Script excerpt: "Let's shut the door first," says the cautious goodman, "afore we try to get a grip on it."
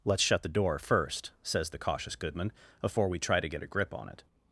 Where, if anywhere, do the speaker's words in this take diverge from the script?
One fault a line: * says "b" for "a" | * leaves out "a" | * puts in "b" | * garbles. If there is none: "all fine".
all fine